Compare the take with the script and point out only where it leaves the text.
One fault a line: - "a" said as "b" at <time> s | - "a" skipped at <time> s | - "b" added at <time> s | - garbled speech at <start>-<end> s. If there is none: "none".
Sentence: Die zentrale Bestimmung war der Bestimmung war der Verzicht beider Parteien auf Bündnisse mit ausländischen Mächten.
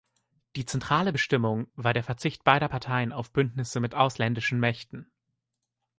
- "Bestimmung war der" skipped at 2.0 s